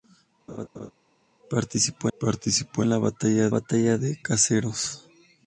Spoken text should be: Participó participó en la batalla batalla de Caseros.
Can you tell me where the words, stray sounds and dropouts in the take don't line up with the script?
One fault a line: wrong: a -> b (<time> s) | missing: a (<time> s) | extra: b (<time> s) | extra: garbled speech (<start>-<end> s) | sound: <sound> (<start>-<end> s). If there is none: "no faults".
sound: laugh (0.5-0.9 s)